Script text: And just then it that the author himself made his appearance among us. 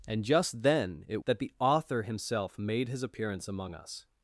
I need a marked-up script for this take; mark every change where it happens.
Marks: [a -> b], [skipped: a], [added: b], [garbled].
And just then it that the author himself made his appearance among us.